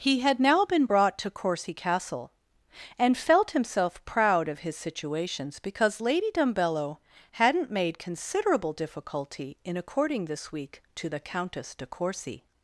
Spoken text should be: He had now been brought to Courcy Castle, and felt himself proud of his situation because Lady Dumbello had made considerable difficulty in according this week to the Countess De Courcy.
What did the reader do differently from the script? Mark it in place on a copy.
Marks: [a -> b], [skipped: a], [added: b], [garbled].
He had now been brought to Courcy Castle, and felt himself proud of his [situation -> situations] because Lady Dumbello [had -> hadn't] made considerable difficulty in according this week to the Countess De Courcy.